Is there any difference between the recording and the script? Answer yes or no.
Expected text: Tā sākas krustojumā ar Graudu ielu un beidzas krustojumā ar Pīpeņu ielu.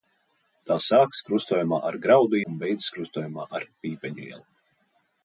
yes